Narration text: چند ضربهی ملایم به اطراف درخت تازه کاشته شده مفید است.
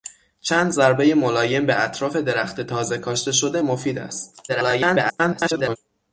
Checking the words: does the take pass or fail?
fail